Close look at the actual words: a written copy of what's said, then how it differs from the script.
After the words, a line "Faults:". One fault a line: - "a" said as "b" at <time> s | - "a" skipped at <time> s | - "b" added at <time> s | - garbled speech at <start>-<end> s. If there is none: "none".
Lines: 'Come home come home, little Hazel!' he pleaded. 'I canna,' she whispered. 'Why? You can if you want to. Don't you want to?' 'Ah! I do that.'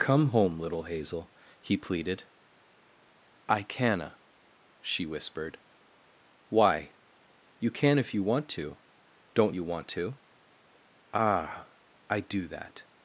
'Come home, little Hazel!' he pleaded. 'I canna,' she whispered. 'Why? You can if you want to. Don't you want to?' 'Ah! I do that.'
Faults:
- "come home" skipped at 0.6 s